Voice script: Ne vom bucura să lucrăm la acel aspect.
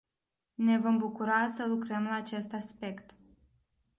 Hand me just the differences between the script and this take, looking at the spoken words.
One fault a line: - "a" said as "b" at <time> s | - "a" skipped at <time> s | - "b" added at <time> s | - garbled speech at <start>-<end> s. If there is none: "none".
- "acel" said as "acest" at 2.1 s